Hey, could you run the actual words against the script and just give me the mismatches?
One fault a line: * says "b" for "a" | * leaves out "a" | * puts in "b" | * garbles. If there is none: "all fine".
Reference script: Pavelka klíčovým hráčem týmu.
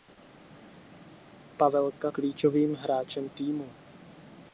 all fine